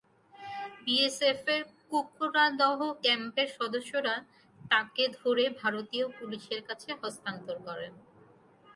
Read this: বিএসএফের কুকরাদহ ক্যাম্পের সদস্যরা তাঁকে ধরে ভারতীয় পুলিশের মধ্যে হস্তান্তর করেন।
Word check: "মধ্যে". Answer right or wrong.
wrong